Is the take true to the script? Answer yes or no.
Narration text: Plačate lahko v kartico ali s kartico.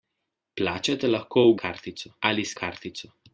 yes